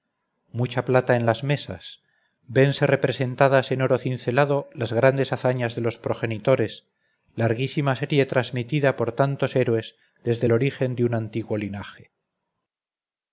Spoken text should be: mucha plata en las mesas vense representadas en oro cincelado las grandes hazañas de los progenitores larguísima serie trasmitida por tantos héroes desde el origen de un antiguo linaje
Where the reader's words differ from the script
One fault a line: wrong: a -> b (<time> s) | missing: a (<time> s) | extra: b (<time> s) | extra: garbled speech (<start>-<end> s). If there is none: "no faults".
no faults